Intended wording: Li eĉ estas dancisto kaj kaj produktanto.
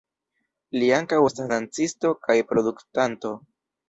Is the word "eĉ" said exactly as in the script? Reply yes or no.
no